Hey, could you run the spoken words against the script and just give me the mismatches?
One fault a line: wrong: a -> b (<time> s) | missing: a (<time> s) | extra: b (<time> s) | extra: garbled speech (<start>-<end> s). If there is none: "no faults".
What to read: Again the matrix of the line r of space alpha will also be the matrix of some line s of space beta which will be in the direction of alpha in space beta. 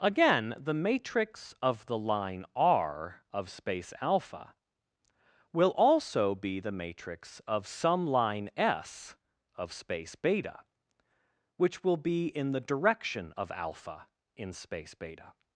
no faults